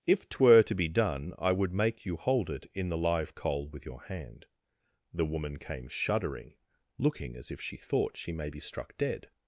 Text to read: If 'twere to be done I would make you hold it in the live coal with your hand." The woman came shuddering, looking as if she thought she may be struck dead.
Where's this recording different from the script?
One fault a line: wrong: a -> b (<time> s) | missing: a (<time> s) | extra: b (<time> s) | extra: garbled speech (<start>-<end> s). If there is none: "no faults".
no faults